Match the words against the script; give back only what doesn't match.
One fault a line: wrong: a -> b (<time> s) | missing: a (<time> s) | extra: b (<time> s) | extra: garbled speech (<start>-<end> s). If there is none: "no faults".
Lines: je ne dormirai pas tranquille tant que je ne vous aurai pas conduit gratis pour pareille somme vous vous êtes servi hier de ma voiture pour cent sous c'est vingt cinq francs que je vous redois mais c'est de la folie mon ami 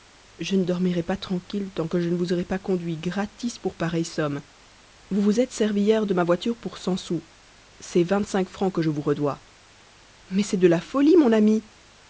no faults